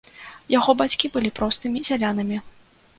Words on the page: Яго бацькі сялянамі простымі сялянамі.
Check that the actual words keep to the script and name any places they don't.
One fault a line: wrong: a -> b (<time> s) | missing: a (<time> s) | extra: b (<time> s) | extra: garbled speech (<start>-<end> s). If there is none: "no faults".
wrong: сялянамі -> былі (1.2 s)